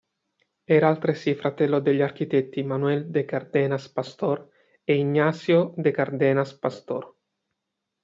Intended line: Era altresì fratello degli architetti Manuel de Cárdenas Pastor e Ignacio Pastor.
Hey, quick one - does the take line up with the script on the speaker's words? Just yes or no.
no